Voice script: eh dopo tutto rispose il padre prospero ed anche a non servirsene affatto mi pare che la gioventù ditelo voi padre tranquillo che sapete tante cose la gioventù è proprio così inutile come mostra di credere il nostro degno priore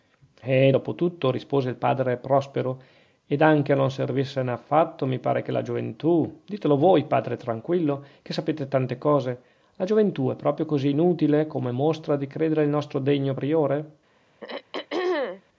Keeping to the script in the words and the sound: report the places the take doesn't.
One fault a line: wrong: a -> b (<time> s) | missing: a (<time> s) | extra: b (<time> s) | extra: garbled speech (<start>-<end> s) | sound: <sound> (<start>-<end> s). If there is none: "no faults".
sound: throat clearing (14.4-15.4 s)